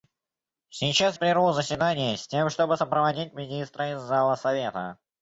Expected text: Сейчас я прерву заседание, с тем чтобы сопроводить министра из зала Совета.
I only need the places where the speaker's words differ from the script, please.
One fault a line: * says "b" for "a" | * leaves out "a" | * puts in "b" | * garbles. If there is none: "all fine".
* leaves out "я"